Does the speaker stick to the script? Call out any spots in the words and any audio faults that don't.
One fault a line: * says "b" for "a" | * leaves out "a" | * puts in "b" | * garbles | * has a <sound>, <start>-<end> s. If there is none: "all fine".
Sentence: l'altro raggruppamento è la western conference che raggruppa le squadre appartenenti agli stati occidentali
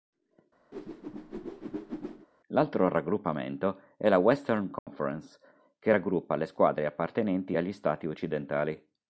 * has a whoosh, 0.7-2.3 s
* has a dropout, 4.8-4.9 s